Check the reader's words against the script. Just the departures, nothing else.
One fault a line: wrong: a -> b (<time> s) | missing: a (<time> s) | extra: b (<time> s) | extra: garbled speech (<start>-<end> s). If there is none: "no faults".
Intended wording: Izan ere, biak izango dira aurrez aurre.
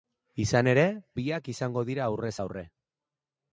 no faults